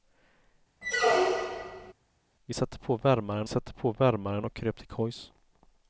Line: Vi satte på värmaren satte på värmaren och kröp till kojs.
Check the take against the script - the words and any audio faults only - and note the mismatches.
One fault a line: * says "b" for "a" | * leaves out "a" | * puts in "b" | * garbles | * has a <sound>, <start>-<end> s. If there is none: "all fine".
* has a squeak, 0.8-1.9 s